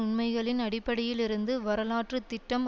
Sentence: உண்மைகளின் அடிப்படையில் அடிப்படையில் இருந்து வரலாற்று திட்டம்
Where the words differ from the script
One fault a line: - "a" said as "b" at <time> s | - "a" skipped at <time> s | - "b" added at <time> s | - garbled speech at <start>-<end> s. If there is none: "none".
- "அடிப்படையில்" skipped at 1.2 s